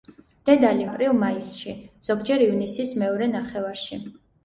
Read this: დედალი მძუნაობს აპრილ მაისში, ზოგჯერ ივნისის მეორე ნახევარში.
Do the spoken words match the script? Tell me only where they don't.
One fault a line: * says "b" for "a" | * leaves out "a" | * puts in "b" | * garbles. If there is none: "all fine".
* leaves out "მძუნაობს"